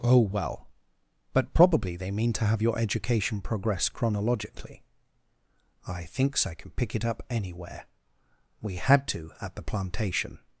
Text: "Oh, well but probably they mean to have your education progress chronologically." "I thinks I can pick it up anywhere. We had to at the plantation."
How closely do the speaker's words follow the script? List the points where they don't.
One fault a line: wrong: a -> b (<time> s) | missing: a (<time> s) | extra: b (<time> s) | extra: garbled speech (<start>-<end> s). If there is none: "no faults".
no faults